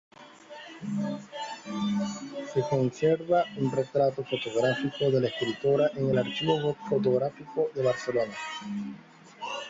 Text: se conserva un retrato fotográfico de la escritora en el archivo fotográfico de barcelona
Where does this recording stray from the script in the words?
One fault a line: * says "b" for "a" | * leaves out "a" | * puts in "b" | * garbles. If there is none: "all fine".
all fine